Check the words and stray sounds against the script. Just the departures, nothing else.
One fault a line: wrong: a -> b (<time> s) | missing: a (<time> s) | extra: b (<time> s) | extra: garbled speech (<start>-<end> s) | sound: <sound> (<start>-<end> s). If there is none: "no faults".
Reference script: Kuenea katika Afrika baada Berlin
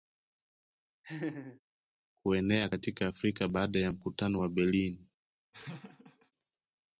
sound: laugh (1.0-1.6 s)
extra: ya mkutano wa (3.8 s)
sound: laugh (5.5-6.3 s)